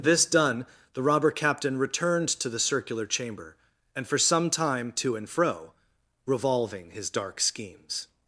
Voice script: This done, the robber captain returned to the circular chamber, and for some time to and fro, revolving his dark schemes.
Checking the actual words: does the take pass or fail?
pass